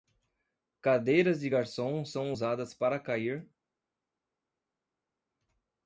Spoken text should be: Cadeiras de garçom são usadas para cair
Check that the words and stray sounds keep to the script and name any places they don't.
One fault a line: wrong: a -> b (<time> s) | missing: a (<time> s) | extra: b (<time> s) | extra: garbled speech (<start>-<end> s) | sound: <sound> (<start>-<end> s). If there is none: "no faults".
no faults